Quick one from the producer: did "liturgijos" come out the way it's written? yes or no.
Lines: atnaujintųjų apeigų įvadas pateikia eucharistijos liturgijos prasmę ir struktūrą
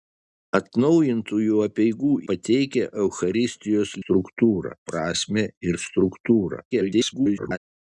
no